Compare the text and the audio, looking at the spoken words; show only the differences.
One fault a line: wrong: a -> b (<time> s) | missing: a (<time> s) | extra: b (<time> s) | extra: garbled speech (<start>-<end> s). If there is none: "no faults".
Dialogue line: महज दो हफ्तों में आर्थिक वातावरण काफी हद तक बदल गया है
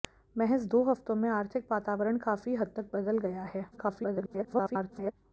extra: garbled speech (3.7-5.1 s)